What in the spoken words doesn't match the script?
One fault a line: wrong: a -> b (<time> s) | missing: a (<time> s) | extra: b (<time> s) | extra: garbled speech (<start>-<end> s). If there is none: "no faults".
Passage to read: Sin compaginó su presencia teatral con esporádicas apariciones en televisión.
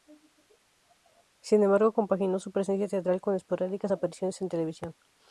extra: embargo (1.6 s)